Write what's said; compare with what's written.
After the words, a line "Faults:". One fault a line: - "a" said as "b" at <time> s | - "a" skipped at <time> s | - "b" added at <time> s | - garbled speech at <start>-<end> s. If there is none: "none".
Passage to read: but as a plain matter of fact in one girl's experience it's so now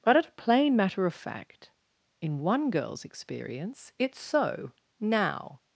but at a plain matter of fact in one girl's experience it's so now
Faults:
- "as" said as "at" at 0.2 s